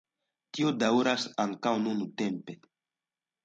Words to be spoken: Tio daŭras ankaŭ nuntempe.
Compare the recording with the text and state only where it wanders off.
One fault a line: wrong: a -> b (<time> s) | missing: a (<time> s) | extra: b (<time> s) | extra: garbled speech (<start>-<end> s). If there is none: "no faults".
no faults